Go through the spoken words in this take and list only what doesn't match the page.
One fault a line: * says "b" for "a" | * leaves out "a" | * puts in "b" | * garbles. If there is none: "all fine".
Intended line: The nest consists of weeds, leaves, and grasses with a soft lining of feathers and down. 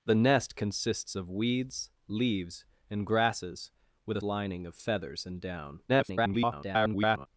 * leaves out "soft"
* garbles